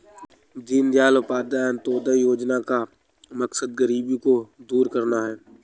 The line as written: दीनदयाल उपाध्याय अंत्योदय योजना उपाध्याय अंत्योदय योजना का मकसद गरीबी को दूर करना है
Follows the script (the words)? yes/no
no